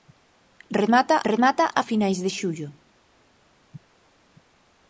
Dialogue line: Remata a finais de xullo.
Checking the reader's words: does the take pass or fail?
fail